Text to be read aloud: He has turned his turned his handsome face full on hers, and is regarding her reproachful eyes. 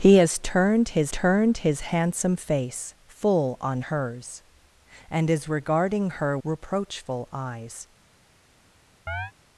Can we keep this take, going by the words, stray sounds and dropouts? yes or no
no